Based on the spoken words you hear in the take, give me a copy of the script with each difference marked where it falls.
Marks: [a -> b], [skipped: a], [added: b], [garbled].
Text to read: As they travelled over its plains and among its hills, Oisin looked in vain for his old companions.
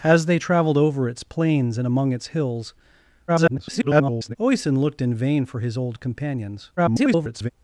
As they travelled over its plains and among its hills, [garbled] Oisin looked in vain for his old companions. [garbled]